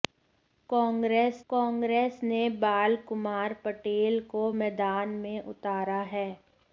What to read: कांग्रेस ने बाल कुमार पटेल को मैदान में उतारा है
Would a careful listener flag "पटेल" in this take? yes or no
no